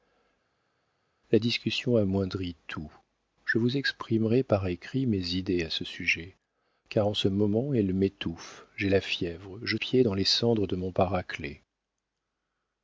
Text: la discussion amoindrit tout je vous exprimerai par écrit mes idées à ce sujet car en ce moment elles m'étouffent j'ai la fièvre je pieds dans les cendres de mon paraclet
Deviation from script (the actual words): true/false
false